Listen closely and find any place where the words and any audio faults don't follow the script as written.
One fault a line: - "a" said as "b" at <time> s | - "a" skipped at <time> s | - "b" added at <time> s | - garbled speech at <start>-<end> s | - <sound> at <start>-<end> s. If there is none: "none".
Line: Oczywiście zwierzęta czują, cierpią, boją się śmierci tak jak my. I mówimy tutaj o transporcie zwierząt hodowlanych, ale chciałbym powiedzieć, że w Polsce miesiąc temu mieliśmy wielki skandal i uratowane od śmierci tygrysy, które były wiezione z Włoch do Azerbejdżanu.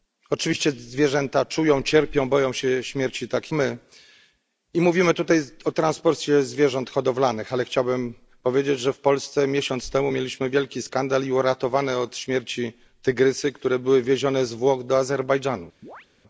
- "jak" skipped at 3.5 s
- chirp at 15.8-16.1 s